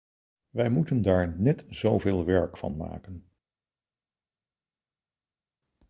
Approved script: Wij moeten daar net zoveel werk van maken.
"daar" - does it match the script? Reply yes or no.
yes